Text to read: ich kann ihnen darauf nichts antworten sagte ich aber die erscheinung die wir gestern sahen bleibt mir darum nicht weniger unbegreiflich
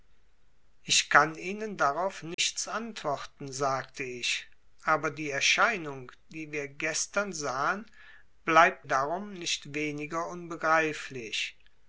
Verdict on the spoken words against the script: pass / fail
fail